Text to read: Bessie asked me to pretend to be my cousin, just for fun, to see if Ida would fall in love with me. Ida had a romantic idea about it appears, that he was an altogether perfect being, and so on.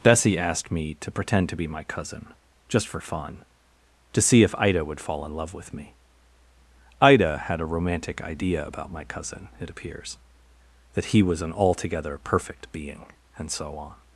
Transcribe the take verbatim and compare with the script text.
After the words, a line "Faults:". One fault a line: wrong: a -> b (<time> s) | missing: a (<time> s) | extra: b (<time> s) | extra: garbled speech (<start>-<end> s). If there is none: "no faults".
Bessie asked me to pretend to be my cousin, just for fun, to see if Ida would fall in love with me. Ida had a romantic idea about my cousin, it appears, that he was an altogether perfect being, and so on.
Faults:
extra: my cousin (8.9 s)